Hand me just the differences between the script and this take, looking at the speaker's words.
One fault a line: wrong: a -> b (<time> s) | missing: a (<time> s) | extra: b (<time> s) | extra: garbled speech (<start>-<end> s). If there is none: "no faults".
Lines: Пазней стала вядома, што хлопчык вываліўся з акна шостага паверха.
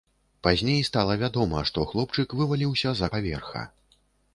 missing: акна шостага (3.1 s)